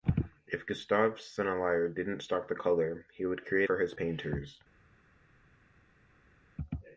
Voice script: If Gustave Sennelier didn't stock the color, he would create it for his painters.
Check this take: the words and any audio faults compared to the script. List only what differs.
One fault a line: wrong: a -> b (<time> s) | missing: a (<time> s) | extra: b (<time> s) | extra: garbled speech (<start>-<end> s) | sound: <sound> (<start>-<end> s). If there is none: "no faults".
missing: it (3.7 s)